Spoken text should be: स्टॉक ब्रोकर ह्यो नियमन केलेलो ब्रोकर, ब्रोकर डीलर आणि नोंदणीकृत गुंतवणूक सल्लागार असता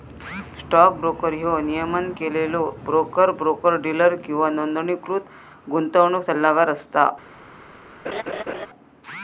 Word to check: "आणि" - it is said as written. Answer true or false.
false